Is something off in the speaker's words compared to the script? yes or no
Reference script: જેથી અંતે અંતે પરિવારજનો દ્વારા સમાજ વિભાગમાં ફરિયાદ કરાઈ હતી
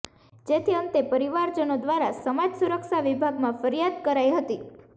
yes